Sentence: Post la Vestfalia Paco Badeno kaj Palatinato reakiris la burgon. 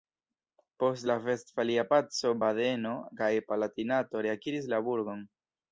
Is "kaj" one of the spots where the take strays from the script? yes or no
no